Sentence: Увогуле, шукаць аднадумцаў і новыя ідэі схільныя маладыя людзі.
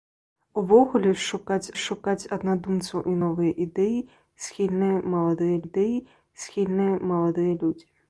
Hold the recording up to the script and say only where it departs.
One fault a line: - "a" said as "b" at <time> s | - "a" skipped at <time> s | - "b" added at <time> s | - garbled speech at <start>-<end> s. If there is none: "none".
- "шукаць" added at 1.8 s
- "ідэі схільныя маладыя" added at 5.7 s